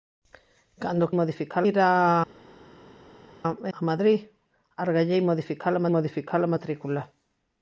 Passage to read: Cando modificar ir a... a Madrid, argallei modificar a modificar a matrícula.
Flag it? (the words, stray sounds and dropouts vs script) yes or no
no